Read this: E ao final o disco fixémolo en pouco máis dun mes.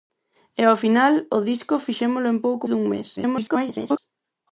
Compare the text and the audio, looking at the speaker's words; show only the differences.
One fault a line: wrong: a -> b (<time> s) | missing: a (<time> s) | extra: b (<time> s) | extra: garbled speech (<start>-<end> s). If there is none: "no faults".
missing: máis (2.7 s)
extra: garbled speech (3.2-4.0 s)